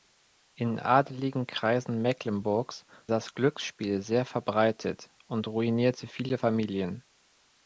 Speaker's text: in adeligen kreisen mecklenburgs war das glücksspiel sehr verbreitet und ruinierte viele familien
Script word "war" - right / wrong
wrong